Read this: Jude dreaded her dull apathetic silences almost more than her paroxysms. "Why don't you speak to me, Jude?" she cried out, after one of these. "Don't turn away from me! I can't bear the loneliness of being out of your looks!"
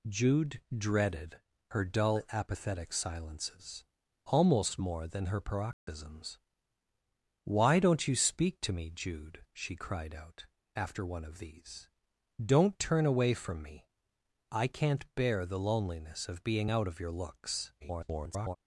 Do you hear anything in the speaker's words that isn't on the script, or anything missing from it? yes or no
yes